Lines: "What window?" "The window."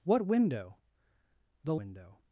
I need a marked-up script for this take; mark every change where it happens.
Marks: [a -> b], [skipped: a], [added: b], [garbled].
"What window?" "The window."